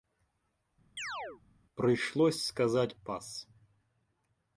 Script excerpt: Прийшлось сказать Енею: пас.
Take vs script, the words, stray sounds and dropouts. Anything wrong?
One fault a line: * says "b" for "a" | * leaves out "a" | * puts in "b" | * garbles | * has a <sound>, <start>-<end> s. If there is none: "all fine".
* has a chirp, 1.0-1.4 s
* leaves out "Енею"